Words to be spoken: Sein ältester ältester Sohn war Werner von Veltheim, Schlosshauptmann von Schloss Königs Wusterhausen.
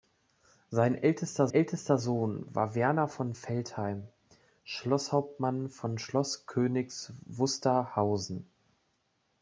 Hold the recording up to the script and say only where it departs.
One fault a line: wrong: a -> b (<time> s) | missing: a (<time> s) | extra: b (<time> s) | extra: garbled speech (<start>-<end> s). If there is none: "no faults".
no faults